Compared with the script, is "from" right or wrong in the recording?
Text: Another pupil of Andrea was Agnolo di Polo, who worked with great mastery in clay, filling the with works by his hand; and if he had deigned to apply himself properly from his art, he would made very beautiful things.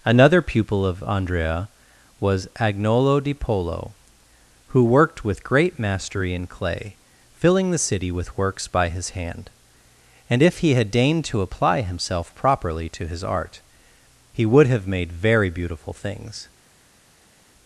wrong